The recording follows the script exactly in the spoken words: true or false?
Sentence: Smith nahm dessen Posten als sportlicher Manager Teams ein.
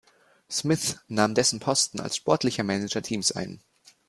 true